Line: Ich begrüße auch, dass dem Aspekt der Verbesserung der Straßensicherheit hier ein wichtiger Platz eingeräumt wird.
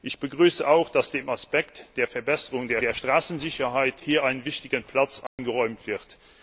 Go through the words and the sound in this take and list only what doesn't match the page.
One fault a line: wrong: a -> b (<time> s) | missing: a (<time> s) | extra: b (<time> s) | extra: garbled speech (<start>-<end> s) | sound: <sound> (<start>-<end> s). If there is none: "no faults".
extra: der (2.8 s)
sound: dropout (5.3-5.4 s)